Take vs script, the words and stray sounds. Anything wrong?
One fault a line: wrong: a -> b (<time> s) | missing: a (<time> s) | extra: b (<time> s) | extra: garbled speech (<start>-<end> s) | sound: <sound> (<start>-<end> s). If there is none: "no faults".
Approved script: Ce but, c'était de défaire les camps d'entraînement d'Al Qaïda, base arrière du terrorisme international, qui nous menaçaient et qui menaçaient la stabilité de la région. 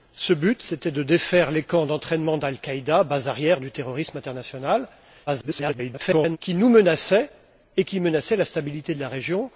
extra: garbled speech (5.3-6.4 s)